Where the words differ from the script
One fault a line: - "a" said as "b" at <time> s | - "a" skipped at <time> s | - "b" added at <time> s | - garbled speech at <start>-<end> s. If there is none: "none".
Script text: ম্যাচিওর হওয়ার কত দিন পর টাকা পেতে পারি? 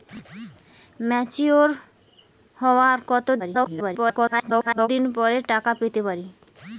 - garbled speech at 3.4-4.9 s